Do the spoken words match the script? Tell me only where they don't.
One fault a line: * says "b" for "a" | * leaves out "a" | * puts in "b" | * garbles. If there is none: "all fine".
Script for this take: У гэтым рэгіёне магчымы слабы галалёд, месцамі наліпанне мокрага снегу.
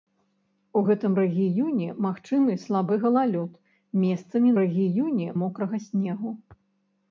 * says "рэгіёне" for "наліпанне"